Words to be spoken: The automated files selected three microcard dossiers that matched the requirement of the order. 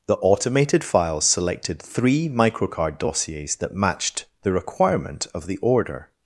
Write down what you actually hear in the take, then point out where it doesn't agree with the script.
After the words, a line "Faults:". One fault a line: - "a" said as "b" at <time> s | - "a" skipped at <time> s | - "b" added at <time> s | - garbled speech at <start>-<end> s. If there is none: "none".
The automated files selected three microcard dossiers that matched the requirement of the order.
Faults:
none